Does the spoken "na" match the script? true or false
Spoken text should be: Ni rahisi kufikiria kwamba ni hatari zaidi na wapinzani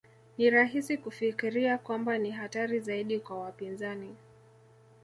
false